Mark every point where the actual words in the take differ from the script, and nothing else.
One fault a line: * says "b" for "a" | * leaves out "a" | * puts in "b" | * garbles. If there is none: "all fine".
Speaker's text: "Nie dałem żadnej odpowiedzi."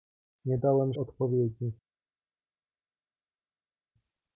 * leaves out "żadnej"